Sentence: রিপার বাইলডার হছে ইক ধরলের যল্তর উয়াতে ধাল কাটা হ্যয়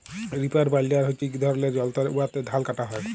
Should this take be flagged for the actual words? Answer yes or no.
no